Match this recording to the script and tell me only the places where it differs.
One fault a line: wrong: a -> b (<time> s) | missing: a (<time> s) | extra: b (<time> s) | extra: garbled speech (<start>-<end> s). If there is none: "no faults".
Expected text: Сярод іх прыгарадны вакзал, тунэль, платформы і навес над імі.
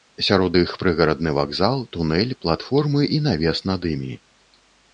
no faults